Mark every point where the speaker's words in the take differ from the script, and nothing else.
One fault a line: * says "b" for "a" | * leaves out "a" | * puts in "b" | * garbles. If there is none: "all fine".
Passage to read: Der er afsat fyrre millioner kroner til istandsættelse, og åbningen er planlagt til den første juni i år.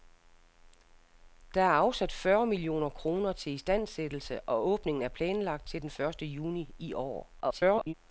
* garbles